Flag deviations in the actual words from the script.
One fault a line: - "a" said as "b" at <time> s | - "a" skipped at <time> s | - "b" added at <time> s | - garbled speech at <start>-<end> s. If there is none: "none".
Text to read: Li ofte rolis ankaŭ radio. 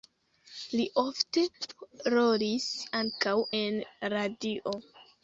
- "en" added at 3.6 s